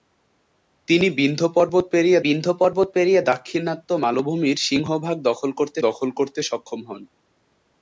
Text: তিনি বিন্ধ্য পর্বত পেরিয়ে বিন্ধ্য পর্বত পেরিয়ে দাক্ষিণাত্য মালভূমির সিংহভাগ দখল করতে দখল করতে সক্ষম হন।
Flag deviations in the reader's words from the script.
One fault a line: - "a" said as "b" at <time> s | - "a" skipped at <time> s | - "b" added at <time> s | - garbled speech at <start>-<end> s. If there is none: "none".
none